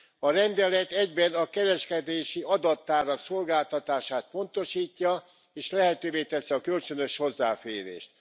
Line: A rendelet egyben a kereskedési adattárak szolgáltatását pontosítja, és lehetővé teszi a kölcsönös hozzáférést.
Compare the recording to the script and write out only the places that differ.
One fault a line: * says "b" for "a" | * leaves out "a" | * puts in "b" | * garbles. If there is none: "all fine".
all fine